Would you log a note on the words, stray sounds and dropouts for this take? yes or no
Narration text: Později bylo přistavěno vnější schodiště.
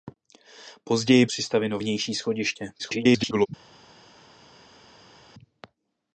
yes